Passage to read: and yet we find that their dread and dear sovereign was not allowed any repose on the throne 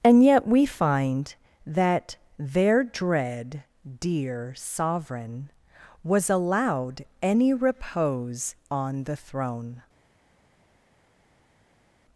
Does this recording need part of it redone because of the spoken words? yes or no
yes